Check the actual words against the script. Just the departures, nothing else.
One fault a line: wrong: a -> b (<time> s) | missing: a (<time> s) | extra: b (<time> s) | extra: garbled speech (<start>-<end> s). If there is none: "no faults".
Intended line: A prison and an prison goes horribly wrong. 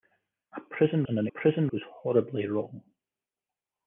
no faults